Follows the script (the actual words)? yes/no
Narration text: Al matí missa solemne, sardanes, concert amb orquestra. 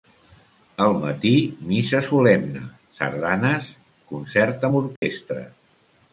yes